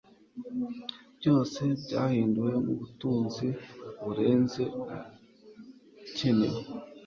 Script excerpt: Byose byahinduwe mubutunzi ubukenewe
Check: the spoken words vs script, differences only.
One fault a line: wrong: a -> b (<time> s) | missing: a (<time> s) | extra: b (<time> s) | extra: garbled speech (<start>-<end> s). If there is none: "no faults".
extra: burenze (4.0 s)